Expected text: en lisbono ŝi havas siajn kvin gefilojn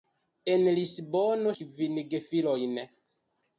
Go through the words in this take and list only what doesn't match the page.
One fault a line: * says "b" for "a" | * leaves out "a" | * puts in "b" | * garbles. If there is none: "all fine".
* leaves out "ŝi havas siajn"